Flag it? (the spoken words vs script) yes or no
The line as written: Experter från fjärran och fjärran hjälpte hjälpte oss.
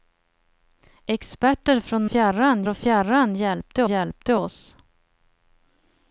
no